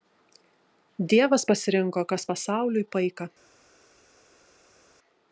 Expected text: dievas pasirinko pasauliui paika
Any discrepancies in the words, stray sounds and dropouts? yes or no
yes